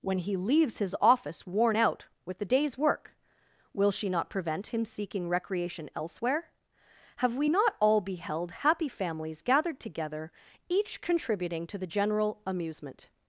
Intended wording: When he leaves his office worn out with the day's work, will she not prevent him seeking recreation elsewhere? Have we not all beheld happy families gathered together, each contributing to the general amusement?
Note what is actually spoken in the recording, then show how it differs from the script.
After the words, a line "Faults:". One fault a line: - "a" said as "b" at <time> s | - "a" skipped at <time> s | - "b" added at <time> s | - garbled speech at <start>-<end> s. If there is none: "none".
When he leaves his office worn out with the day's work, will she not prevent him seeking recreation elsewhere? Have we not all beheld happy families gathered together, each contributing to the general amusement?
Faults:
none